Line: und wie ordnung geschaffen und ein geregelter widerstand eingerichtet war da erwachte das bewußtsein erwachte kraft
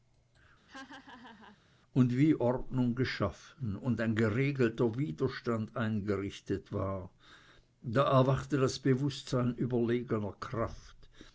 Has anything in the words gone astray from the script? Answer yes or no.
yes